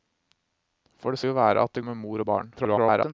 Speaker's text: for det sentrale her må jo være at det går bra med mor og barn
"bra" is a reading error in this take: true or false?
true